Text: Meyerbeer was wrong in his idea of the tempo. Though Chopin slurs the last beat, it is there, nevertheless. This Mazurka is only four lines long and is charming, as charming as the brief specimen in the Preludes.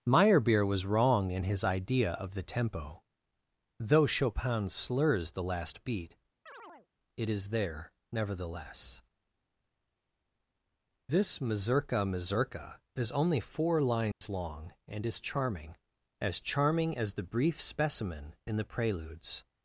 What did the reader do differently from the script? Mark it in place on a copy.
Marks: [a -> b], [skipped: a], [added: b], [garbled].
Meyerbeer was wrong in his idea of the tempo. Though Chopin slurs the last beat, it is there, nevertheless. This Mazurka [added: Mazurka] is only four lines long and is charming, as charming as the brief specimen in the Preludes.